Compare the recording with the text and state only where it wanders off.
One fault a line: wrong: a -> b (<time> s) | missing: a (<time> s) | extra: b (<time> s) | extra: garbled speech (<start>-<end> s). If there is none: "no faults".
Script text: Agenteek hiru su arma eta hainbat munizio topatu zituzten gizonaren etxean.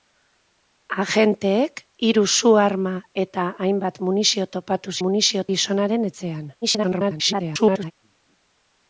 wrong: zituzten -> munizio (5.1 s)
extra: garbled speech (6.6-7.9 s)